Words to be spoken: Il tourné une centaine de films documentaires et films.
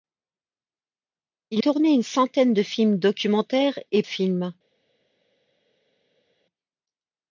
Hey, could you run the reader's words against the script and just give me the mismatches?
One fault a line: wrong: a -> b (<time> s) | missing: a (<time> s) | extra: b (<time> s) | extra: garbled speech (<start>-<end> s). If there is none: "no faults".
no faults